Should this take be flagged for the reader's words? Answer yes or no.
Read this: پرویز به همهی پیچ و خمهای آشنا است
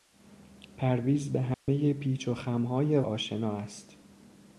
no